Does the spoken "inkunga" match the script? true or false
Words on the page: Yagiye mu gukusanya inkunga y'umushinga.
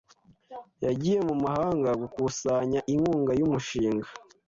true